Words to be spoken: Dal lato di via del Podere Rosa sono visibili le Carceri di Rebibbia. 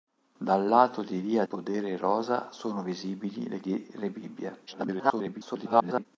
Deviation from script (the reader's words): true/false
true